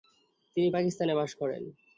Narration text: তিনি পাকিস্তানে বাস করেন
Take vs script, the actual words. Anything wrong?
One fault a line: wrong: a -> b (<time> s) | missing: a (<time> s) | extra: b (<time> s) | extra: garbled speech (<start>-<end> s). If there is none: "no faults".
no faults